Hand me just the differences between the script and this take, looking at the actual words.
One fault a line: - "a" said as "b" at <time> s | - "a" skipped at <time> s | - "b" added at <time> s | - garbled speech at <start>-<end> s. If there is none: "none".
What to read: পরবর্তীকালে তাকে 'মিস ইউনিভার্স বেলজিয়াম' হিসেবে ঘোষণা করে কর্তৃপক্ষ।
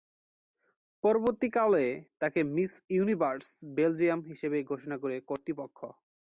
none